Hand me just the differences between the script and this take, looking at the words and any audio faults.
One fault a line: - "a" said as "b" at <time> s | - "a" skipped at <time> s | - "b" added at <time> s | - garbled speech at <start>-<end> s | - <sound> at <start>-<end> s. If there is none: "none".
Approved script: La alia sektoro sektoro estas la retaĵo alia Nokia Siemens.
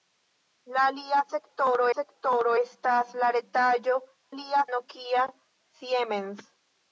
none